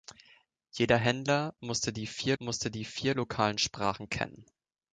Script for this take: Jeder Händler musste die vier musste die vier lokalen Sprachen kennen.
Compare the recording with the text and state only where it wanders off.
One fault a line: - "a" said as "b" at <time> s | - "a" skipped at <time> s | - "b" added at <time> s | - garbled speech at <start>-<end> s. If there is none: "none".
none